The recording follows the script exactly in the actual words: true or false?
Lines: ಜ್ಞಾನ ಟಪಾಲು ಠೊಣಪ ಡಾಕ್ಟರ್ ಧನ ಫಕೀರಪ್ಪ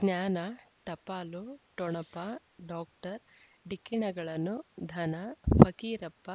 false